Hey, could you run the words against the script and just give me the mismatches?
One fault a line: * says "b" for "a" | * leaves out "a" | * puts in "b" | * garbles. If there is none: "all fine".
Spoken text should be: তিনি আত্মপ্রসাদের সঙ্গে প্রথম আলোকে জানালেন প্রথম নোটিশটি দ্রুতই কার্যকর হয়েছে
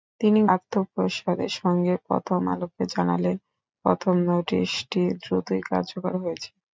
all fine